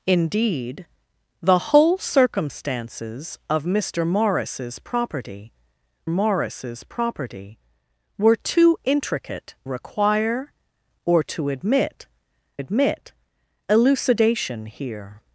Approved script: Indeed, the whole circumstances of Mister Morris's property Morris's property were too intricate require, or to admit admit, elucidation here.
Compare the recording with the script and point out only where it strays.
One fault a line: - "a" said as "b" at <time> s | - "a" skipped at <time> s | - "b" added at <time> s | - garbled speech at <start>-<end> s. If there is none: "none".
none